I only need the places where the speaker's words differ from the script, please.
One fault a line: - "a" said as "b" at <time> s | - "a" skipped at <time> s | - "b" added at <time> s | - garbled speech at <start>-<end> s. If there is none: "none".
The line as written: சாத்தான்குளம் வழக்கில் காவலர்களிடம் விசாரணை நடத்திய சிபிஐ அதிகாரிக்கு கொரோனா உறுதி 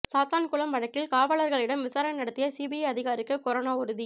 none